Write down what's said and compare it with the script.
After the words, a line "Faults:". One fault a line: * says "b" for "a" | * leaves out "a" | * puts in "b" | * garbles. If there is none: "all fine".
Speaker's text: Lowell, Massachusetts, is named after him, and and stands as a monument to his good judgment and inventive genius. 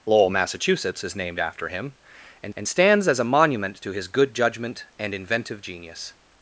Lowell, Massachusetts, is named after him, and and stands as a monument to his good judgment and inventive genius.
Faults:
all fine